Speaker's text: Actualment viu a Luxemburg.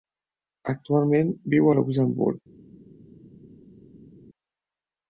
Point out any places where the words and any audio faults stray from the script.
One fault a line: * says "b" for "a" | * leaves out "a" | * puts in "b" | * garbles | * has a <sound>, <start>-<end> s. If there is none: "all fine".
all fine